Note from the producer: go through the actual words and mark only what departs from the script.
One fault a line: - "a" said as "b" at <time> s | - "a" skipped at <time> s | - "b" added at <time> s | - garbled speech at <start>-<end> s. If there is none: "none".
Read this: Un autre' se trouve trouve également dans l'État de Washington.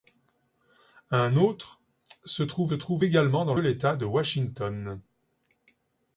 none